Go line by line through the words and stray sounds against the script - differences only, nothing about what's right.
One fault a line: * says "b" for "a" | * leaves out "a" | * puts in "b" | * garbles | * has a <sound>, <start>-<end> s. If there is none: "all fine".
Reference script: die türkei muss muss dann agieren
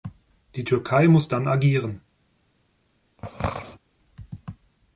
* leaves out "muss"
* has a throat clearing, 3.2-3.8 s